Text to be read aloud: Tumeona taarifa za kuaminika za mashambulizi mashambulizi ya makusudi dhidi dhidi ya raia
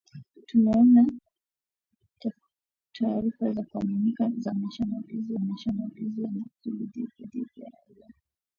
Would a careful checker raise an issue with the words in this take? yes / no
no